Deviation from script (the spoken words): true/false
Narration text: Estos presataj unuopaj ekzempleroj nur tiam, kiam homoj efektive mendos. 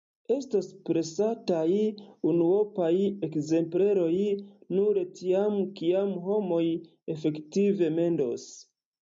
false